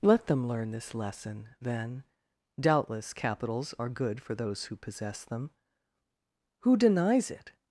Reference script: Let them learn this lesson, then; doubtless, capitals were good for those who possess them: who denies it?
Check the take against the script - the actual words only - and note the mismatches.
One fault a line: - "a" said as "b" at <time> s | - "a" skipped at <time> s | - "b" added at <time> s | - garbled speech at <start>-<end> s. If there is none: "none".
- "were" said as "are" at 3.8 s